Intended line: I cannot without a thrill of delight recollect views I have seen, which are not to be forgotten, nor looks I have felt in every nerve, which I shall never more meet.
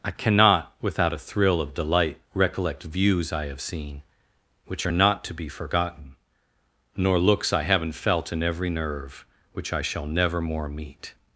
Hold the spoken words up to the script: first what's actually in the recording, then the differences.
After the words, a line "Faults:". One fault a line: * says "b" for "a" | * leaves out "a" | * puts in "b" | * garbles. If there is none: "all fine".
I cannot without a thrill of delight recollect views I have seen, which are not to be forgotten, nor looks I haven't felt in every nerve, which I shall never more meet.
Faults:
* says "haven't" for "have"